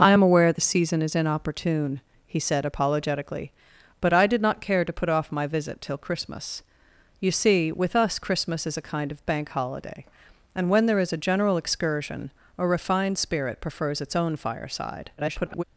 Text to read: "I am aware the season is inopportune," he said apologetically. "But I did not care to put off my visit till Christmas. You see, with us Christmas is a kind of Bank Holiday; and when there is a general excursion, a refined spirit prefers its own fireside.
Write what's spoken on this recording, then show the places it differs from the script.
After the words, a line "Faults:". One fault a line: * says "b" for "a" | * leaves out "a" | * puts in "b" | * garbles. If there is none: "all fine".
"I am aware the season is inopportune," he said apologetically. "But I did not care to put off my visit till Christmas. You see, with us Christmas is a kind of Bank Holiday; and when there is a general excursion, a refined spirit prefers its own fireside. [garbled]
Faults:
* garbles